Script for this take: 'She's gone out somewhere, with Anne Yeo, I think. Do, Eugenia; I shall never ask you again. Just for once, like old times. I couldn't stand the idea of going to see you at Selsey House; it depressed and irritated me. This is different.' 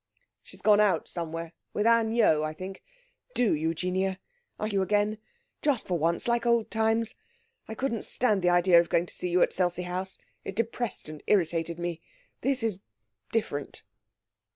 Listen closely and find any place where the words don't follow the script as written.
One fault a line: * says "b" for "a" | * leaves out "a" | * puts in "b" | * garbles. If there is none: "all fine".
* leaves out "shall never ask"